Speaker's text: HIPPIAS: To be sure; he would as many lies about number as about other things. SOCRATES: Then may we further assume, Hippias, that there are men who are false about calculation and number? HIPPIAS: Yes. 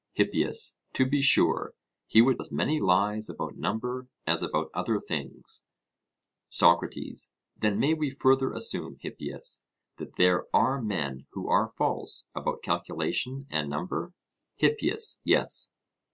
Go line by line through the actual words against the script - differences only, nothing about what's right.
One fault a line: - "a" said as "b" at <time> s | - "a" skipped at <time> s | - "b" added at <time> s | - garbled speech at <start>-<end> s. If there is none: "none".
none